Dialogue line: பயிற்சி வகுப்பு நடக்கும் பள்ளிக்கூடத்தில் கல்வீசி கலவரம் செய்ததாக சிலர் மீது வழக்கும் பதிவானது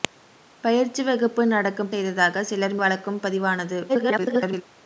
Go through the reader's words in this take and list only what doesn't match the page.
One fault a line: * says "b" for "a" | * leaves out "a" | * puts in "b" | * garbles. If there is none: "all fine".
* leaves out "பள்ளிக்கூடத்தில் கல்வீசி கலவரம்"
* leaves out "மீது"
* garbles